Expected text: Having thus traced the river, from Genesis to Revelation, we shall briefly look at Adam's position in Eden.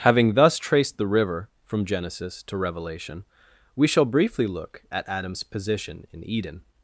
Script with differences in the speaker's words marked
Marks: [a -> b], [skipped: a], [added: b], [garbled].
Having thus traced the river, from Genesis to Revelation, we shall briefly look at Adam's position in Eden.